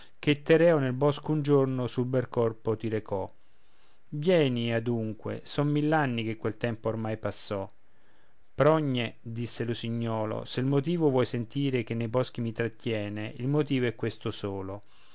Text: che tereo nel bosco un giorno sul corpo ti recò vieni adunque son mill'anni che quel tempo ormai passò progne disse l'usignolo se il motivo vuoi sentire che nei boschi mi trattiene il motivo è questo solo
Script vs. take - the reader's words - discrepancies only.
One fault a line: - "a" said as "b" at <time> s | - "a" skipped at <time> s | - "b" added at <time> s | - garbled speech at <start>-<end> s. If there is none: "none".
- "bel" added at 2.0 s